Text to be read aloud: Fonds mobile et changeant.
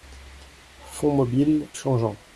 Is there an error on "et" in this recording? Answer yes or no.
yes